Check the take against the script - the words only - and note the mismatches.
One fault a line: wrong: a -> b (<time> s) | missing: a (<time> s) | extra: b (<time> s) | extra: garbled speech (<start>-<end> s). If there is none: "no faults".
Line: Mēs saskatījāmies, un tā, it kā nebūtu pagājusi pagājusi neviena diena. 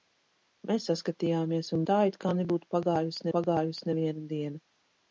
no faults